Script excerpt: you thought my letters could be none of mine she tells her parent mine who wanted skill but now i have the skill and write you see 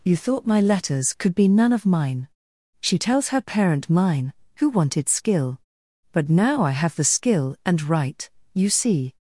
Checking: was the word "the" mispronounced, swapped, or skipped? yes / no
no